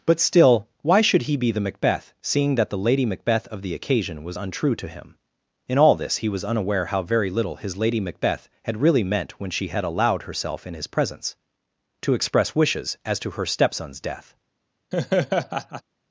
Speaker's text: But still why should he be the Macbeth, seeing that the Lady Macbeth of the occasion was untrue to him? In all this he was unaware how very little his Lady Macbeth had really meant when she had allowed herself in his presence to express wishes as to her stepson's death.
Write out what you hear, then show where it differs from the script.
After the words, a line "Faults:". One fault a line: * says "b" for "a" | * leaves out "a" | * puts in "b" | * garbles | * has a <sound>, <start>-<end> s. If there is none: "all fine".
But still why should he be the Macbeth, seeing that the Lady Macbeth of the occasion was untrue to him? In all this he was unaware how very little his Lady Macbeth had really meant when she had allowed herself in his presence to express wishes as to her stepson's death.
Faults:
* has a laugh, 14.9-15.8 s